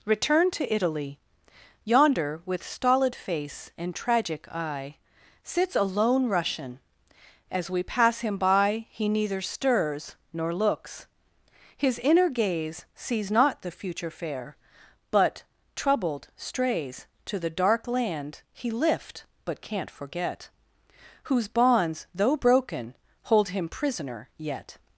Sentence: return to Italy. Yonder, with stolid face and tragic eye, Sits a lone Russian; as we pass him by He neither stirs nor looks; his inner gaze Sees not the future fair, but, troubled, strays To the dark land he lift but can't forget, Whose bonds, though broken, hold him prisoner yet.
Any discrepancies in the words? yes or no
no